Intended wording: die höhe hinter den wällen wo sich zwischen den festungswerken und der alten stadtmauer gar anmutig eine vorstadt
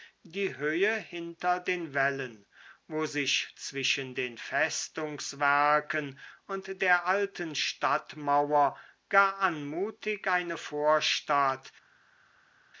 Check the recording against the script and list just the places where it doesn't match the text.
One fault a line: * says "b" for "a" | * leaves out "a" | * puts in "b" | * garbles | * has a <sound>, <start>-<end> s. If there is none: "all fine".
all fine